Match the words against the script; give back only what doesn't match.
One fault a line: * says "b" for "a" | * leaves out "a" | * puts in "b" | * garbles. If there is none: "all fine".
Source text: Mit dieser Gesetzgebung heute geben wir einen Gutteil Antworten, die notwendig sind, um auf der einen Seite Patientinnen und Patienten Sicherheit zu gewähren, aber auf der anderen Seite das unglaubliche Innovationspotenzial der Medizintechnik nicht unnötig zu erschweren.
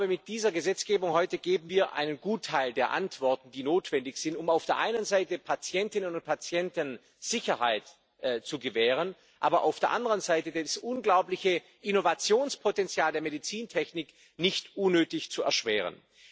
* puts in "der"